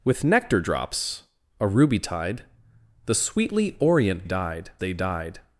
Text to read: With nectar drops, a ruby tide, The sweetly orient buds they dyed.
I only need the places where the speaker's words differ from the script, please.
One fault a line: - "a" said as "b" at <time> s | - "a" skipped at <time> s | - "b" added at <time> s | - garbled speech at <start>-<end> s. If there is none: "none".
- "buds" said as "dyed" at 4.2 s